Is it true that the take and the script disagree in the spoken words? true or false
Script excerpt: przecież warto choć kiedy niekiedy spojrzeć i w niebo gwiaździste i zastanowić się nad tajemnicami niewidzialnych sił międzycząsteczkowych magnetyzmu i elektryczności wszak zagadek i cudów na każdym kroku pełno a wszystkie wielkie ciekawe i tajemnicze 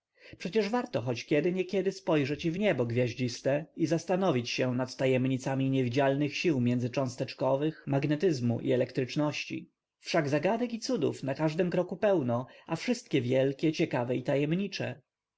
false